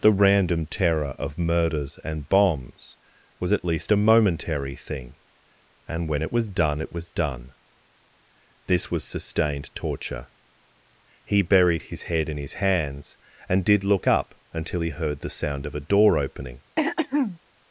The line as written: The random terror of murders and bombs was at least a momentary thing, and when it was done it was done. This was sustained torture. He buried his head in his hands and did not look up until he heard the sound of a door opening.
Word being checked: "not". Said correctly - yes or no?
no